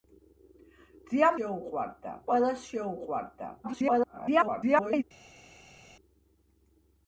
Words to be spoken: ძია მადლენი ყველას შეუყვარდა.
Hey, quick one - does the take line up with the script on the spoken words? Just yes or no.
no